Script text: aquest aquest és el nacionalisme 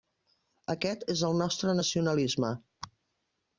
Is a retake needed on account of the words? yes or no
yes